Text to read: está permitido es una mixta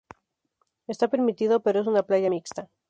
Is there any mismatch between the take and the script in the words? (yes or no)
yes